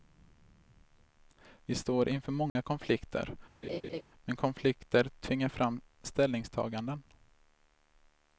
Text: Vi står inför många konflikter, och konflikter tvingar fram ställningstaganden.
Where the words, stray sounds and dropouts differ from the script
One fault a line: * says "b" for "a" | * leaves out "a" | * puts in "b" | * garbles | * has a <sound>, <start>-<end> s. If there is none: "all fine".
* has a dropout, 2.5-2.6 s
* has a laugh, 3.6-4.0 s
* says "men" for "och"